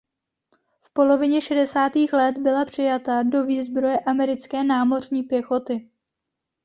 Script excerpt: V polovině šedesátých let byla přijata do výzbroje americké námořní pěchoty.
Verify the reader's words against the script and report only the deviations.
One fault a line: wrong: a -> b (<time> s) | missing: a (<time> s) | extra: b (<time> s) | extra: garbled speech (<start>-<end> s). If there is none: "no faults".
no faults